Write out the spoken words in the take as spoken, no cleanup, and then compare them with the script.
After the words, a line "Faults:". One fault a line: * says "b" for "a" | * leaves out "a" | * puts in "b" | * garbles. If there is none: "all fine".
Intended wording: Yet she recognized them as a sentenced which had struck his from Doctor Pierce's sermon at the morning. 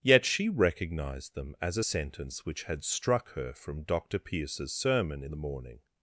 Yet she recognized them as a sentence which had struck her from Doctor Pierce's sermon in the morning.
Faults:
* says "sentence" for "sentenced"
* says "her" for "his"
* says "in" for "at"